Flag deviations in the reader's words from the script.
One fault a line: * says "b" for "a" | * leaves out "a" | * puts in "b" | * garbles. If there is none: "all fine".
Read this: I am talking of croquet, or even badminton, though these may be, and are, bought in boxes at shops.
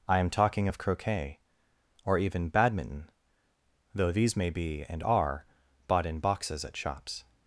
all fine